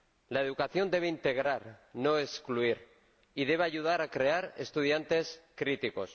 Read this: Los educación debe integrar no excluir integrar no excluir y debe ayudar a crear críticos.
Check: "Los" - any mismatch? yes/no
yes